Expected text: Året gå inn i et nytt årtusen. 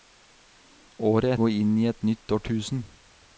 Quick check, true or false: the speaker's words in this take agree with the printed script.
true